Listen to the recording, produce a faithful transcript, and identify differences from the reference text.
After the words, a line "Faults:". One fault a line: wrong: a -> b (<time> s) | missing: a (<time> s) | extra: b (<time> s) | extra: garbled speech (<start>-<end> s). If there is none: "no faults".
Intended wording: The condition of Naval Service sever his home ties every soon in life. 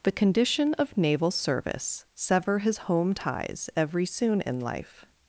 The condition of Naval Service sever his home ties every soon in life.
Faults:
no faults